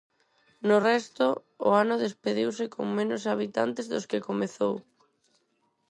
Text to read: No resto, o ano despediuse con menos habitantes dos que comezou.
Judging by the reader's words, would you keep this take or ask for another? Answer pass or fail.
pass